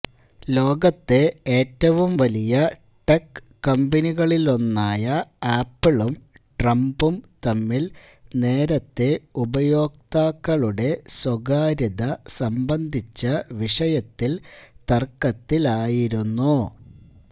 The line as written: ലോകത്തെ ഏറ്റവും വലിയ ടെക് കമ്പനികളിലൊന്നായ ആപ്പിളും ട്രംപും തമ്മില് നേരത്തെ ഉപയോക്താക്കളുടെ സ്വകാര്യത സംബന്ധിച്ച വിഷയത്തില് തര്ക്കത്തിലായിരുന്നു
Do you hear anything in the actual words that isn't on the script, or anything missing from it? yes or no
no